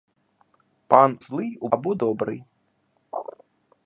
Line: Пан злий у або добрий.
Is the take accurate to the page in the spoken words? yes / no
yes